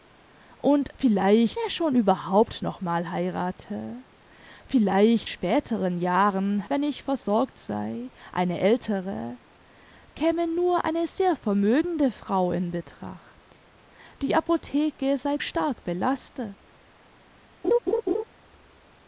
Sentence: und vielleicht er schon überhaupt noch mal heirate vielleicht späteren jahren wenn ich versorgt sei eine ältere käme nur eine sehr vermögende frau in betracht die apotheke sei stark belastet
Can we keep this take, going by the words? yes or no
yes